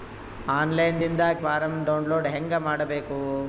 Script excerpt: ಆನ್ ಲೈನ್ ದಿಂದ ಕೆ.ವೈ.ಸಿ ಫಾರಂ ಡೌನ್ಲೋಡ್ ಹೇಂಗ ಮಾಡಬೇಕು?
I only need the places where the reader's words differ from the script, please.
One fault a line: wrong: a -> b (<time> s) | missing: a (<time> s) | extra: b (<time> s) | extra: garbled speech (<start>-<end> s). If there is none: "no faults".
missing: ಕೆ.ವೈ.ಸಿ (1.2 s)